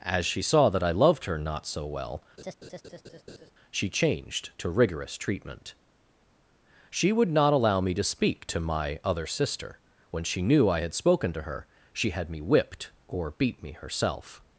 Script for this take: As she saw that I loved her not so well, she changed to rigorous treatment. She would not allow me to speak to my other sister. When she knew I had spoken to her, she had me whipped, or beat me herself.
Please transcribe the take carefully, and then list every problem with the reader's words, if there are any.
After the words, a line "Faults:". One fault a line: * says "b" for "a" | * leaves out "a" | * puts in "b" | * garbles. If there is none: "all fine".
As she saw that I loved her not so well, she changed to rigorous treatment. She would not allow me to speak to my other sister. When she knew I had spoken to her, she had me whipped, or beat me herself.
Faults:
all fine